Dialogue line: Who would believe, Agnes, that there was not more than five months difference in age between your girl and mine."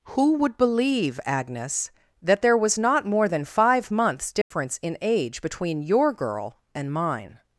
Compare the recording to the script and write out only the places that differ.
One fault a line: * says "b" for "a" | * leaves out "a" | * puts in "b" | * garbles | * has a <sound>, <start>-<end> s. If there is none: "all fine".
* has a dropout, 4.4-4.5 s